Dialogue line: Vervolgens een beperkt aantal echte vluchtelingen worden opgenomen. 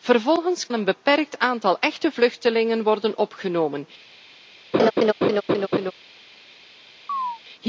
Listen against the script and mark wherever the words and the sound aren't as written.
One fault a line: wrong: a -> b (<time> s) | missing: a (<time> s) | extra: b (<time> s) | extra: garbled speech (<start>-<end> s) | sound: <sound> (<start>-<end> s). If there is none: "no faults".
sound: laugh (4.7-5.9 s)
sound: chirp (7.1-7.4 s)